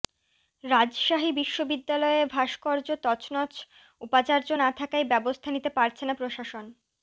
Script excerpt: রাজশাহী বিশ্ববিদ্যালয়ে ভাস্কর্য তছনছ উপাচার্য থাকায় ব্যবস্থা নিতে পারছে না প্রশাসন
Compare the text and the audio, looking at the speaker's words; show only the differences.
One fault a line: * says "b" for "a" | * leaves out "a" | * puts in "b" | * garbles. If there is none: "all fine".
* puts in "না"